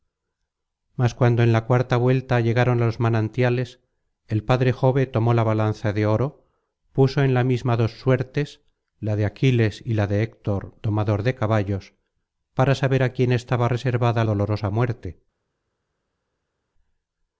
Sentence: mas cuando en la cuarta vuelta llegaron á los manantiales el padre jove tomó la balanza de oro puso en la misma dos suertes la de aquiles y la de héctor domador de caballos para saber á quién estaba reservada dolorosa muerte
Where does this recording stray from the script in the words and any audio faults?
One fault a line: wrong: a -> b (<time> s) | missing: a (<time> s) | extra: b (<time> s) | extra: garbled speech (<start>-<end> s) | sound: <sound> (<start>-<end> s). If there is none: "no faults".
no faults